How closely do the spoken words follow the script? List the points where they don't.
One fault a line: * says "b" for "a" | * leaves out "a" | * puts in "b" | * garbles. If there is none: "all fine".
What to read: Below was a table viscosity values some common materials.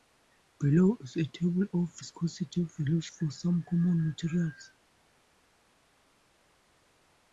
* says "is" for "was"
* puts in "of"
* puts in "for"